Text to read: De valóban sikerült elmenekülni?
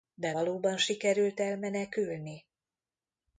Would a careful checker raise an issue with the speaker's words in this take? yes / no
no